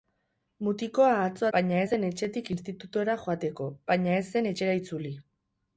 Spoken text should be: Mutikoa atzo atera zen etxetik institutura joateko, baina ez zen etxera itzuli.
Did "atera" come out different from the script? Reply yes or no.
yes